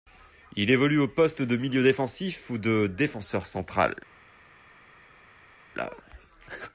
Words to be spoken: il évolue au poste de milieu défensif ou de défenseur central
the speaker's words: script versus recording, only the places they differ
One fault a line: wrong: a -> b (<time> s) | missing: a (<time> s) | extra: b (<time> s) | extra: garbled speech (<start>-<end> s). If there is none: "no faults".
no faults